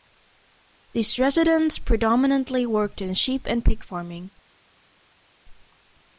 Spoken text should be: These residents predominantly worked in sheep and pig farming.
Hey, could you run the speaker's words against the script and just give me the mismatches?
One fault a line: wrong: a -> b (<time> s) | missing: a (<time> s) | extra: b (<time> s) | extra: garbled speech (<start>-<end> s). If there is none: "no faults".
no faults